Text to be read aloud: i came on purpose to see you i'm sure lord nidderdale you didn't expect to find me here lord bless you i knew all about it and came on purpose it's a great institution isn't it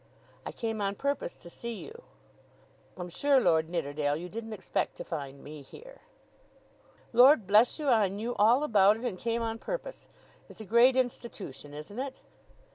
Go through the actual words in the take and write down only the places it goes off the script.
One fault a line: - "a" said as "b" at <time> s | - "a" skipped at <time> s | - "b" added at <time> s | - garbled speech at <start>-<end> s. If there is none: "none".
none